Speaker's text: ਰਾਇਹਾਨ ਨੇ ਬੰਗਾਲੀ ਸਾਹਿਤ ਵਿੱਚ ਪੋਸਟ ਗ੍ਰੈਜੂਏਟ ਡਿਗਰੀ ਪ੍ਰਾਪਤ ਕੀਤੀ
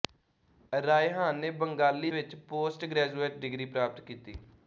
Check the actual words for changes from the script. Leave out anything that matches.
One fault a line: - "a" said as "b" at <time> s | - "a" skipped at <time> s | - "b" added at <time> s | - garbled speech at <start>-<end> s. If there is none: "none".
- "ਸਾਹਿਤ" skipped at 2.1 s